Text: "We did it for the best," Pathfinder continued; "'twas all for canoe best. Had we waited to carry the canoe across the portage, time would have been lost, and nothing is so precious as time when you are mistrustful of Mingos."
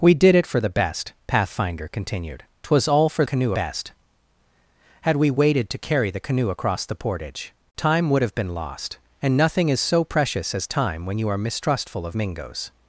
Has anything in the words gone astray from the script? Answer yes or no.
no